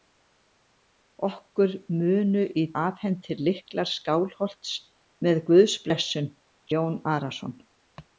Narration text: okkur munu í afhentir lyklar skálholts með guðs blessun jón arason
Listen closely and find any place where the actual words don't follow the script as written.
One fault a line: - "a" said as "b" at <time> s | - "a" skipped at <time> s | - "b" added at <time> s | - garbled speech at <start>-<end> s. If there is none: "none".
none